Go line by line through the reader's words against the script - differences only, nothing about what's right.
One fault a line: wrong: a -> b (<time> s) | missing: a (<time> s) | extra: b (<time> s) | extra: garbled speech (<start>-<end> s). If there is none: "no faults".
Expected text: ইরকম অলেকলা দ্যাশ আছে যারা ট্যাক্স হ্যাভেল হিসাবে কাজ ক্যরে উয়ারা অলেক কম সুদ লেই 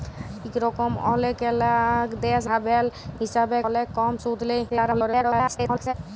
missing: আছে যারা ট্যাক্স (2.5 s)
missing: কাজ ক্যরে উয়ারা (3.6 s)
extra: garbled speech (4.7-5.9 s)